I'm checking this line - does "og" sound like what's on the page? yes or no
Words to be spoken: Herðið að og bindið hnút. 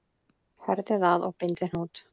yes